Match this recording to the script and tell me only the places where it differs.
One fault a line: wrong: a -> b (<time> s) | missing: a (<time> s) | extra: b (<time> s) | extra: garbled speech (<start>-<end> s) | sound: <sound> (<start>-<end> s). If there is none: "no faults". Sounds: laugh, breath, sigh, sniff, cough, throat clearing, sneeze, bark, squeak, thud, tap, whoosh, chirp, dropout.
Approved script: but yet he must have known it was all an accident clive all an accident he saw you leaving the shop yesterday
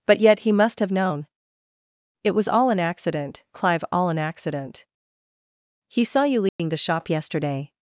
sound: dropout (6.5-6.6 s)